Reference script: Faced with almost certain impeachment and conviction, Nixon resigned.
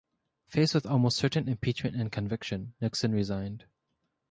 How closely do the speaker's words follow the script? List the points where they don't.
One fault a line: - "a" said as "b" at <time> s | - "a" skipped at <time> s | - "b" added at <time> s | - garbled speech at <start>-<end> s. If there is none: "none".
none